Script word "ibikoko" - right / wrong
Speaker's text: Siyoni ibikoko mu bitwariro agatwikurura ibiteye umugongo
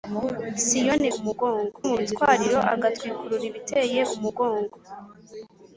wrong